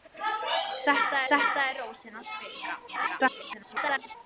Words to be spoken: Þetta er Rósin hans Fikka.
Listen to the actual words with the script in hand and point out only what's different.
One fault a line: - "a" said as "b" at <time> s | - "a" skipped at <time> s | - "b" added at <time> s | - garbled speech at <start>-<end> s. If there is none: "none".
- "þetta" added at 1.3 s
- garbled speech at 2.9-4.2 s